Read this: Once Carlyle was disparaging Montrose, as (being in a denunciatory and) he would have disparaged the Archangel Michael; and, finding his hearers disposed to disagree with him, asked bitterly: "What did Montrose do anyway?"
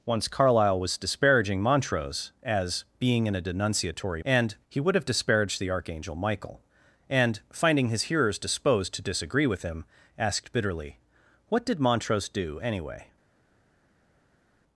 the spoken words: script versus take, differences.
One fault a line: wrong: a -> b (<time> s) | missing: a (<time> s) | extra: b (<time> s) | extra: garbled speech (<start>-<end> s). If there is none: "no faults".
no faults